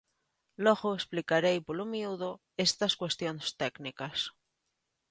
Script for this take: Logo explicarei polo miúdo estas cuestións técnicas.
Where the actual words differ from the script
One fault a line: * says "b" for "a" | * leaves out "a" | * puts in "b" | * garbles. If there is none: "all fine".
all fine